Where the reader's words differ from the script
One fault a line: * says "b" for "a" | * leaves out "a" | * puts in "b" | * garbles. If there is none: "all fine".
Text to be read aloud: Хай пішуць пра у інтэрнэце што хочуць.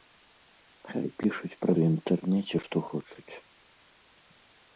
all fine